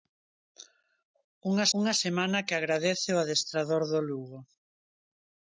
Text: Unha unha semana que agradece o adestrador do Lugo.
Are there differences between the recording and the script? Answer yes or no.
no